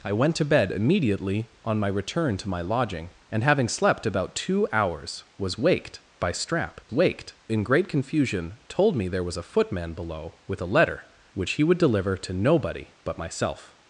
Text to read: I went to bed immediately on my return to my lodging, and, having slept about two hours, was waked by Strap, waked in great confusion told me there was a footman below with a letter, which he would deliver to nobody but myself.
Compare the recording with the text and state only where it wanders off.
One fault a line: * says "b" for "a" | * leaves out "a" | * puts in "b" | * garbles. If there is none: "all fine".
all fine